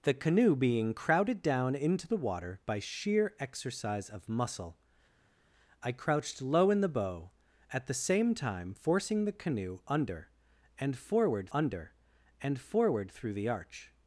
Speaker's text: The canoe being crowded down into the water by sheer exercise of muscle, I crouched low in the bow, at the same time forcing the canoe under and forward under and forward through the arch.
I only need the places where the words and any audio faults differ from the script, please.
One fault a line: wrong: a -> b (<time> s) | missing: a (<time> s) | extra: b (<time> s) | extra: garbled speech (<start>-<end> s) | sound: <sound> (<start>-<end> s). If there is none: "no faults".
no faults